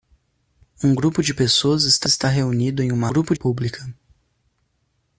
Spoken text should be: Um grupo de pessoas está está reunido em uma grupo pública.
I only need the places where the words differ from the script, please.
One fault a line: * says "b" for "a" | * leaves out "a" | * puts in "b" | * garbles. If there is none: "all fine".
all fine